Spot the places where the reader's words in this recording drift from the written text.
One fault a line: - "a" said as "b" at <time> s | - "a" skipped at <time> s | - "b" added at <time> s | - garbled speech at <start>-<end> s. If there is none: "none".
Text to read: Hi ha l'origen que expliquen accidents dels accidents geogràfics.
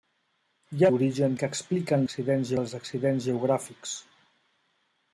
none